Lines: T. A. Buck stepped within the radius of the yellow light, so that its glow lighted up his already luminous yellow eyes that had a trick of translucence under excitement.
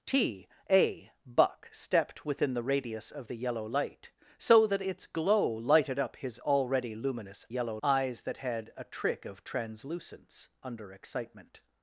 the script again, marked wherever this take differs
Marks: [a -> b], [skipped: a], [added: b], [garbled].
T. A. Buck stepped within the radius of the yellow light, so that its glow lighted up his already luminous yellow eyes that had a trick of translucence under excitement.